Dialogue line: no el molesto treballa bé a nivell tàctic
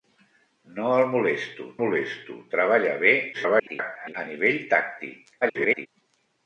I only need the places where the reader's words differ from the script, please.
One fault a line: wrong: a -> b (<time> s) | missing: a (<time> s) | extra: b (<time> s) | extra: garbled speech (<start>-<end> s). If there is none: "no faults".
extra: molesto (1.8 s)
extra: garbled speech (3.3-4.1 s)
extra: garbled speech (5.4-5.9 s)